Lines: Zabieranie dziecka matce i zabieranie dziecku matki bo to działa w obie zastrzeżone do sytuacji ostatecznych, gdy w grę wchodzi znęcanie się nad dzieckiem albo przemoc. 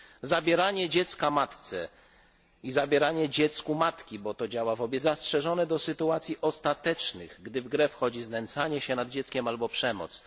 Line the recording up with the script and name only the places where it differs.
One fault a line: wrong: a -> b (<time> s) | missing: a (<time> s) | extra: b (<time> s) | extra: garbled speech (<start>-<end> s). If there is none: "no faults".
no faults